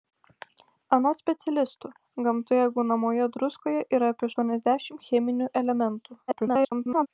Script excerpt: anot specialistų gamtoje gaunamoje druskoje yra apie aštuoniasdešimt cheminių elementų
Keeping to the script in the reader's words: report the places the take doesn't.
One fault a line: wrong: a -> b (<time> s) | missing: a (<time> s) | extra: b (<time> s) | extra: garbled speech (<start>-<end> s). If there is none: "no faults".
extra: garbled speech (6.3-7.1 s)